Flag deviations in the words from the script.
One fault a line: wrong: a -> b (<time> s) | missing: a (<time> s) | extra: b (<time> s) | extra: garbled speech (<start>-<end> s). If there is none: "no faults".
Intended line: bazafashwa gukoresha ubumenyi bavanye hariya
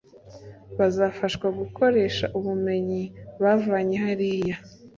no faults